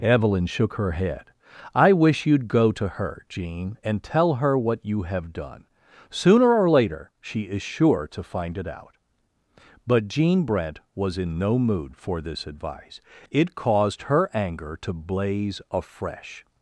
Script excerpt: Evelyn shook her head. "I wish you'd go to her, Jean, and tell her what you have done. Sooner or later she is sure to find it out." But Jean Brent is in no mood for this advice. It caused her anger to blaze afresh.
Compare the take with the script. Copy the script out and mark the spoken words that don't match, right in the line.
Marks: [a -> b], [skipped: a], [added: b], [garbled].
Evelyn shook her head. "I wish you'd go to her, Jean, and tell her what you have done. Sooner or later she is sure to find it out." But Jean Brent [is -> was] in no mood for this advice. It caused her anger to blaze afresh.